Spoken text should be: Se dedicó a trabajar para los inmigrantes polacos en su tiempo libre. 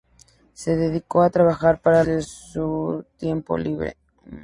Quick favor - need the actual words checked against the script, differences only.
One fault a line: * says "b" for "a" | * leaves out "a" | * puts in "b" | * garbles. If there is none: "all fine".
* leaves out "los inmigrantes polacos"